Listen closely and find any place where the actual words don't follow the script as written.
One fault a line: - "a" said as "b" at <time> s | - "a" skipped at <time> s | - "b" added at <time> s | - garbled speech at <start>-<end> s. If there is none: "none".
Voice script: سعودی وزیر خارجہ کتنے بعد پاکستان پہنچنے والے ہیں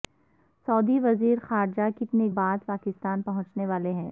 none